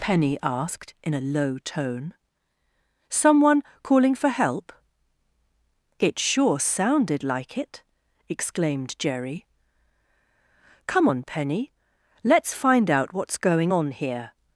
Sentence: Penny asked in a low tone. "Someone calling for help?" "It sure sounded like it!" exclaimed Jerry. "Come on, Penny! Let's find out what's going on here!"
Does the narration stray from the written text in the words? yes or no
no